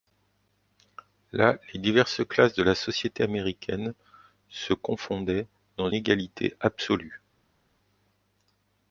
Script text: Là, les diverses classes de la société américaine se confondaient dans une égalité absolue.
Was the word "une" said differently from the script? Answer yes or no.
yes